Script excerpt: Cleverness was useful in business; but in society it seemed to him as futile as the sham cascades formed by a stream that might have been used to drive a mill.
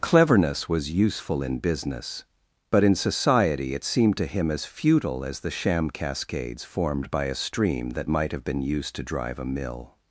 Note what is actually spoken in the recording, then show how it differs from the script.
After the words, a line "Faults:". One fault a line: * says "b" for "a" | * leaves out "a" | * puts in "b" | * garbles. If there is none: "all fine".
Cleverness was useful in business; but in society it seemed to him as futile as the sham cascades formed by a stream that might have been used to drive a mill.
Faults:
all fine